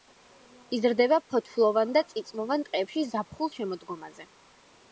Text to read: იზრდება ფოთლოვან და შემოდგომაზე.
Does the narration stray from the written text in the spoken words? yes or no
yes